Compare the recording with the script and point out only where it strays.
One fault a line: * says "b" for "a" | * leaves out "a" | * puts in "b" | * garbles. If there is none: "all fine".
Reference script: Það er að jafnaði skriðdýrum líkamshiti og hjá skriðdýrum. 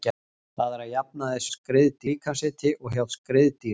all fine